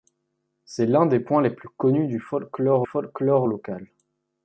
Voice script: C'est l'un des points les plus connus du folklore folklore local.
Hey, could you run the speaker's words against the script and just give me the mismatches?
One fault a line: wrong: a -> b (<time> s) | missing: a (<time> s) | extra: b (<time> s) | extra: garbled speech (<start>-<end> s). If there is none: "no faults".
no faults